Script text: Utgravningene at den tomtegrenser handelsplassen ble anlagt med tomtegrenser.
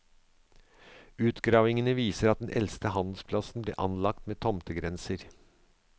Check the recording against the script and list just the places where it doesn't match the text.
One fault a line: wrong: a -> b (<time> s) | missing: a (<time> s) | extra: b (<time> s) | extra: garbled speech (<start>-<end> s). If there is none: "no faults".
extra: viser (2.0 s)
wrong: tomtegrenser -> eldste (2.6 s)